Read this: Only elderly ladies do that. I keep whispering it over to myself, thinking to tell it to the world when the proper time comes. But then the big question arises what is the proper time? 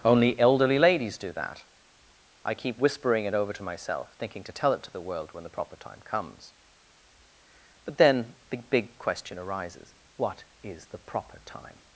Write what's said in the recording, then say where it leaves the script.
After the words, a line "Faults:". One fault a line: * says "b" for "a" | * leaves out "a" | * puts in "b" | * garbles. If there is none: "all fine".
Only elderly ladies do that. I keep whispering it over to myself, thinking to tell it to the world when the proper time comes. But then the big question arises what is the proper time?
Faults:
all fine